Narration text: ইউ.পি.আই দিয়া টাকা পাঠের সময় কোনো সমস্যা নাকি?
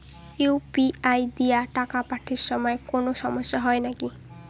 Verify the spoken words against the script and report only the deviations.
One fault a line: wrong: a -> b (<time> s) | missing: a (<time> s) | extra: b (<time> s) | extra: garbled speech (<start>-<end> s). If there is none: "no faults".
extra: হয় (3.6 s)